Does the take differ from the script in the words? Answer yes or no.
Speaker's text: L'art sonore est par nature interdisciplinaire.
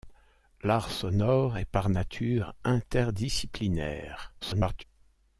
yes